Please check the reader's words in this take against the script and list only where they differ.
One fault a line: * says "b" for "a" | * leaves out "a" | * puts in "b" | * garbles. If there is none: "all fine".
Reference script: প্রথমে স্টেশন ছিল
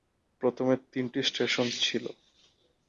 * puts in "তিনটি"